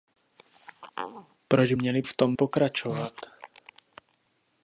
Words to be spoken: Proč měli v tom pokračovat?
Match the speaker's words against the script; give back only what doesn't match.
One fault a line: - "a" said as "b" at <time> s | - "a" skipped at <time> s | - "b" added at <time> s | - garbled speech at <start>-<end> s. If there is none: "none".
none